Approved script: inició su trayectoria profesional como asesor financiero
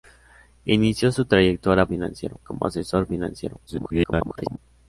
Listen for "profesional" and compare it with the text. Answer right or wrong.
wrong